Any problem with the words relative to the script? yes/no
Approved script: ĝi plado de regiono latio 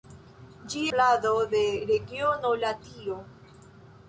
no